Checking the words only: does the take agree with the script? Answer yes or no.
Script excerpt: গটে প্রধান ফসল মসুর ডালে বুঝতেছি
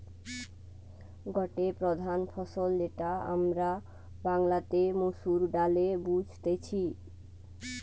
no